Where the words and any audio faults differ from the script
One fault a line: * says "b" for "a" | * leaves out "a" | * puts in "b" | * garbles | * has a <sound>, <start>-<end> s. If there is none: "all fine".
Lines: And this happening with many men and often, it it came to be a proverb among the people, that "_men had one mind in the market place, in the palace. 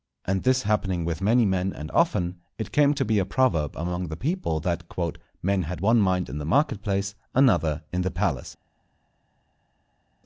* leaves out "it"
* puts in "another"